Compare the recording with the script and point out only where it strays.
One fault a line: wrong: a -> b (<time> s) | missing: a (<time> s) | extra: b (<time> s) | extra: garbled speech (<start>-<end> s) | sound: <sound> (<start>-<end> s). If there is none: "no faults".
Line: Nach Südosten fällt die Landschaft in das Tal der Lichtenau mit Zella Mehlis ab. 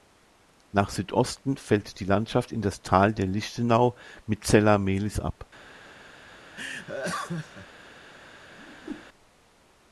sound: laugh (6.5-7.7 s)
sound: whoosh (8.6-9.1 s)